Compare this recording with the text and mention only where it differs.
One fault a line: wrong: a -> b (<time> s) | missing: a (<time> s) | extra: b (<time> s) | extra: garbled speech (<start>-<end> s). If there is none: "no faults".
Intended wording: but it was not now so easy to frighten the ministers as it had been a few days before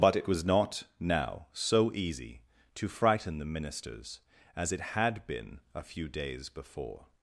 no faults